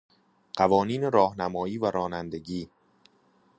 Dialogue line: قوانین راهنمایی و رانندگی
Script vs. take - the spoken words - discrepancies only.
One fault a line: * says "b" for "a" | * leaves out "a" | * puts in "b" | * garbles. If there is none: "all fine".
all fine